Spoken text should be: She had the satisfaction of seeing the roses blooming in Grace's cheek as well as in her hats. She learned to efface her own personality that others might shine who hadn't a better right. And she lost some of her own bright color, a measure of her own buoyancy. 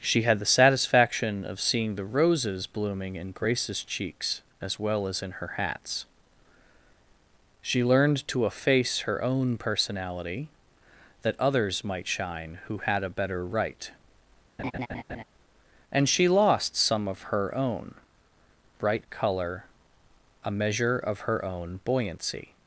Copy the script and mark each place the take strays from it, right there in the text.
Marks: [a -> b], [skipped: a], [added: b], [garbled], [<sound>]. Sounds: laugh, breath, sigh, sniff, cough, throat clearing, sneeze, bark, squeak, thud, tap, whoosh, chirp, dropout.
She had the satisfaction of seeing the roses blooming in Grace's [cheek -> cheeks] as well as in her hats. She learned to efface her own personality that others might shine who [hadn't -> had] a better right. [laugh] And she lost some of her own bright color, a measure of her own buoyancy.